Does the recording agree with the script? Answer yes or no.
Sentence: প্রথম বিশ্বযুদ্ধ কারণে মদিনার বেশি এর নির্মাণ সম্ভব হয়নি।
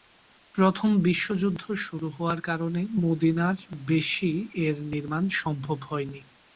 no